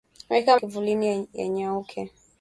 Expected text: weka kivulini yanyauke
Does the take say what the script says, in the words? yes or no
yes